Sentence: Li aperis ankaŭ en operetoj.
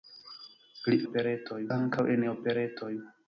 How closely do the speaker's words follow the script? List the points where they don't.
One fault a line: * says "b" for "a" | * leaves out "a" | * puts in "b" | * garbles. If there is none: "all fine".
* says "operetoj" for "aperis"